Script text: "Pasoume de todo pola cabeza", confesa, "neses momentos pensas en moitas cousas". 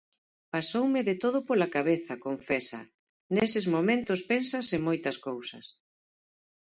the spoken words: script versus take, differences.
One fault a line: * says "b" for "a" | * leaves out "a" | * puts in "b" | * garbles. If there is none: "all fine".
all fine